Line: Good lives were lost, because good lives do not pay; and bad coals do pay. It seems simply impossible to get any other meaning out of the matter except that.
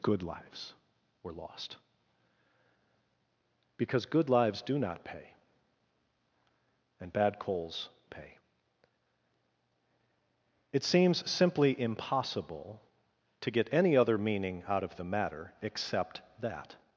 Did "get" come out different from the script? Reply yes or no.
no